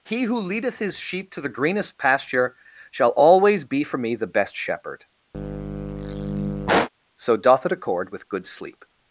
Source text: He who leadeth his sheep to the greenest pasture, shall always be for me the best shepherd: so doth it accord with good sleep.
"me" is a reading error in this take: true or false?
false